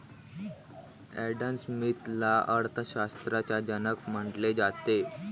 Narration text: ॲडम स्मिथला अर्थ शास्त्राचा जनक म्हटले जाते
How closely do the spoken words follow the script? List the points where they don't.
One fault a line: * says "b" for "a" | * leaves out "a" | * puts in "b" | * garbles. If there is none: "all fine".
all fine